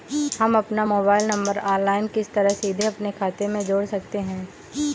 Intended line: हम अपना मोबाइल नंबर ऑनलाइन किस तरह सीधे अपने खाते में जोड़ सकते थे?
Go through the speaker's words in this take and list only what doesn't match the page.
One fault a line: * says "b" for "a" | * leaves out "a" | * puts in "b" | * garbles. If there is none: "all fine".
* says "हैं" for "थे"